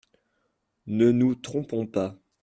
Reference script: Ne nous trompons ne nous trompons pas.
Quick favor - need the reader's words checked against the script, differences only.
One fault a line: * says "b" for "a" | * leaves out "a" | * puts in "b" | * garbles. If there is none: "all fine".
* leaves out "ne nous trompons"